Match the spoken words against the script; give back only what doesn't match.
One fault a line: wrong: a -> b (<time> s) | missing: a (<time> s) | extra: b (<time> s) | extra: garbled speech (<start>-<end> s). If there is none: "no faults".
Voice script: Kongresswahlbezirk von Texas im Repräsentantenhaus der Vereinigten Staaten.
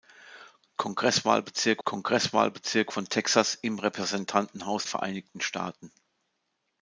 extra: kongresswahlbezirk (1.8 s)
missing: der (4.9 s)